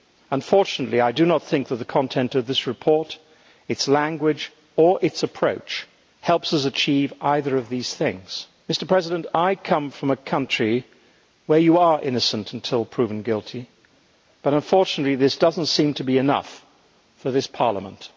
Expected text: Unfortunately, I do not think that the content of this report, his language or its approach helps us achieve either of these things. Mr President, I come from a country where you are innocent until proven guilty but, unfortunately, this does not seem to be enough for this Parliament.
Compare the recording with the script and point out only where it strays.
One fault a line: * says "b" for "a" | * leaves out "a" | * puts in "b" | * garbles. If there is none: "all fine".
* says "its" for "his"